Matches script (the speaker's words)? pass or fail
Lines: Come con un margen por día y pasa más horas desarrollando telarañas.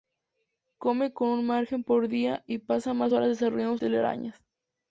pass